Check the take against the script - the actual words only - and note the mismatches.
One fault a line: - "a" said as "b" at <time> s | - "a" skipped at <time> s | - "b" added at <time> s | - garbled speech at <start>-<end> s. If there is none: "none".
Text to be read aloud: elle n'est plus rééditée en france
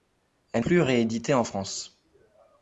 - "n'est" skipped at 0.7 s